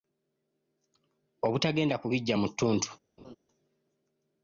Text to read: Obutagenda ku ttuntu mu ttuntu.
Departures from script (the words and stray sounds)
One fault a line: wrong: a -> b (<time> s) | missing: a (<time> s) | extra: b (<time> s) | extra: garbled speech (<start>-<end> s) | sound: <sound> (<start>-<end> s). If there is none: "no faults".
wrong: ttuntu -> biggya (2.1 s)
sound: laugh (3.2-3.4 s)